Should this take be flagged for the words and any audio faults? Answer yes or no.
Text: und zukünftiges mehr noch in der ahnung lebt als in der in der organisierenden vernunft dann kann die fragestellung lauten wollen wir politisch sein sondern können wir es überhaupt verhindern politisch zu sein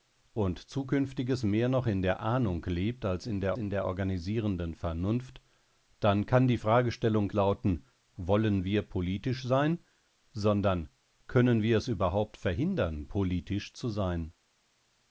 no